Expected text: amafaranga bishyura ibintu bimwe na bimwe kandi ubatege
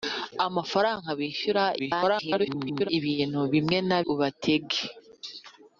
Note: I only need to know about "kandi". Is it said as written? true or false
false